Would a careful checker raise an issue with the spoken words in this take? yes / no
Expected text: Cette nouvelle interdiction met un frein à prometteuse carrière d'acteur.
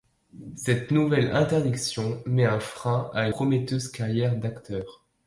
no